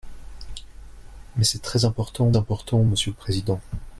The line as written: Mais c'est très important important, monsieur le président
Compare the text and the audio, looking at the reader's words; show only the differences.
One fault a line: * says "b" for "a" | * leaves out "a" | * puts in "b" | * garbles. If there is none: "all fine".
all fine